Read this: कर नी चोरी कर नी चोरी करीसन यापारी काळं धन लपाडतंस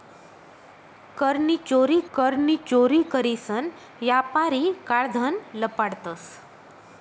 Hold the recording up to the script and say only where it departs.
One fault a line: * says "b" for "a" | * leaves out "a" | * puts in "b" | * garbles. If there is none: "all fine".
all fine